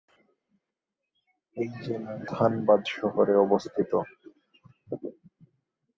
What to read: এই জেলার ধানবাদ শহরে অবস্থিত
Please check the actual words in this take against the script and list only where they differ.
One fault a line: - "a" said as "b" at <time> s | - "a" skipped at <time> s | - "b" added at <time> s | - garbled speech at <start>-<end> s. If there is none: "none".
none